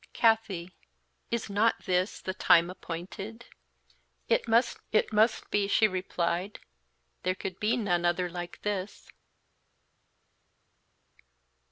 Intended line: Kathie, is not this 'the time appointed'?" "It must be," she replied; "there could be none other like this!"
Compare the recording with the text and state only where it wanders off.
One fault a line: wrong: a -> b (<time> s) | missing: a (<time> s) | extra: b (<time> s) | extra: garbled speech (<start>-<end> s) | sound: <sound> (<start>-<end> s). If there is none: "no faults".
extra: it must (4.9 s)